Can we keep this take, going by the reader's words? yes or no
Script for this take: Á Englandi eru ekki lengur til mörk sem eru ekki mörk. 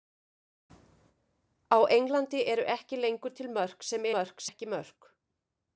no